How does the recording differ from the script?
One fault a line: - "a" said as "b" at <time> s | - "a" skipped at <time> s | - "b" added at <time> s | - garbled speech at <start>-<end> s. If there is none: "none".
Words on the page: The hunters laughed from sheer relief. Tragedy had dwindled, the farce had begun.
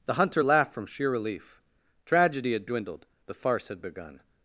- "hunters" said as "hunter" at 0.1 s